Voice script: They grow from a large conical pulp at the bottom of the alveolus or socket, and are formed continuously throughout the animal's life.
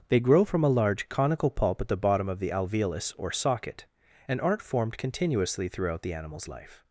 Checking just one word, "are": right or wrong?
wrong